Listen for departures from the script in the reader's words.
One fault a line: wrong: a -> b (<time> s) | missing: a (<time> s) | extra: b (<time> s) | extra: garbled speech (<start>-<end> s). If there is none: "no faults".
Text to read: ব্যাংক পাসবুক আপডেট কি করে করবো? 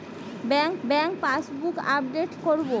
extra: ব্যাংক (0.8 s)
missing: কি করে (2.3 s)